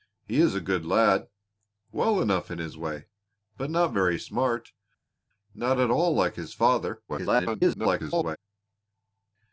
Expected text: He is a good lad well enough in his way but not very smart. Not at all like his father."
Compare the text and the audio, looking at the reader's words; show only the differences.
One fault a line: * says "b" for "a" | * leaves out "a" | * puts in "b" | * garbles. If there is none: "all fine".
* garbles